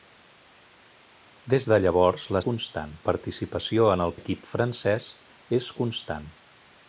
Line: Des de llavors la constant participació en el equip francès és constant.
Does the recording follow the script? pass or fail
pass